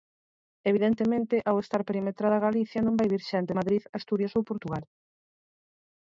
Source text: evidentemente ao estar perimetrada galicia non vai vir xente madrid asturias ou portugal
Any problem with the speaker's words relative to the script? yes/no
no